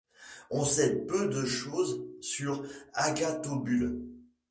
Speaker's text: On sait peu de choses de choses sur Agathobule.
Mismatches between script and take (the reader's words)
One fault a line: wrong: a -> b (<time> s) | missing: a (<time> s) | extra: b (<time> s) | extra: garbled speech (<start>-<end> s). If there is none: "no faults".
missing: de choses (2.1 s)